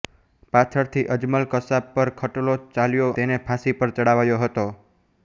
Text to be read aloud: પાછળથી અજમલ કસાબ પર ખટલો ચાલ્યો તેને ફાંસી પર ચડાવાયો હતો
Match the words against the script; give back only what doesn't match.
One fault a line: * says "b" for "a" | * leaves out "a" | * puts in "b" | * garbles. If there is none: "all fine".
all fine